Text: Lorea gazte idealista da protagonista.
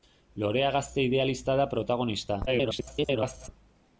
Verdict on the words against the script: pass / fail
fail